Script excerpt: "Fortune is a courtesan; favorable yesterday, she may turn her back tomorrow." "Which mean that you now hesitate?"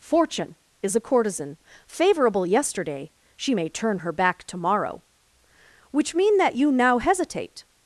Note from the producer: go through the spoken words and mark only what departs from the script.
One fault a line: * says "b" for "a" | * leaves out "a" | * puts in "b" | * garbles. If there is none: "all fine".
all fine